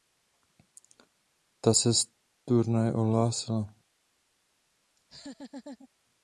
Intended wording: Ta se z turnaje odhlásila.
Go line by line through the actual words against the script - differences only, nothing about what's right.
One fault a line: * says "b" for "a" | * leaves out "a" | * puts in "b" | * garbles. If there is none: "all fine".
all fine